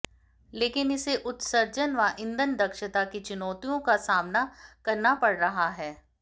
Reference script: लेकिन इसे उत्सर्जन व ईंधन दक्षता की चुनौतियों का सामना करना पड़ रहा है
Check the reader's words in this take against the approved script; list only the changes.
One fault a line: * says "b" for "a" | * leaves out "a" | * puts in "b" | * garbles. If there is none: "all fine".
all fine